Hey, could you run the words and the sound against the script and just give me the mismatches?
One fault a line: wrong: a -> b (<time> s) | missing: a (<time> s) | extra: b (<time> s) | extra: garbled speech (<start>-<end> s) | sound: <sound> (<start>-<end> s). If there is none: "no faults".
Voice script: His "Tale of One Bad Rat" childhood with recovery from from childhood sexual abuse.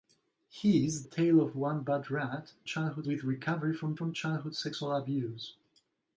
no faults